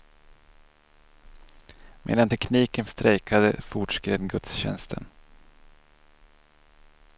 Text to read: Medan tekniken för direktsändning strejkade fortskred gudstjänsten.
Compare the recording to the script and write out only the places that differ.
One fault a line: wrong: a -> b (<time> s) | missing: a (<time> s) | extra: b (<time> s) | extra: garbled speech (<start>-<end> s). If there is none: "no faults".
missing: för direktsändning (2.8 s)